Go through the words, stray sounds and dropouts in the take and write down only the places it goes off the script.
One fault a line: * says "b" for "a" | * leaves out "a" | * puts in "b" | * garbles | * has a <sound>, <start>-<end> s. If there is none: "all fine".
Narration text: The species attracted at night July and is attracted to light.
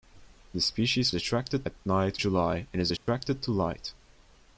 * has a dropout, 3.0-3.1 s